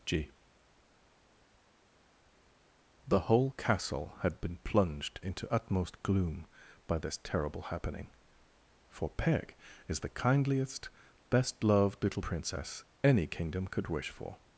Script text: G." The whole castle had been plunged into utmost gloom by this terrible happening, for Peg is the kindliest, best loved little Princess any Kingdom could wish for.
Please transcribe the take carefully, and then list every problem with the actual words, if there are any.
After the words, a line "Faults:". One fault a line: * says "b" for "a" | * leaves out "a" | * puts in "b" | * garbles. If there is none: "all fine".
G." The whole castle had been plunged into utmost gloom by this terrible happening, for Peg is the kindliest, best loved little Princess any Kingdom could wish for.
Faults:
all fine